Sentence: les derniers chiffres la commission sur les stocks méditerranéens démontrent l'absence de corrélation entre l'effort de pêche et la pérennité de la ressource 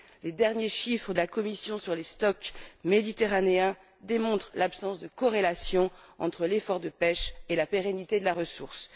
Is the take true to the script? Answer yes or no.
yes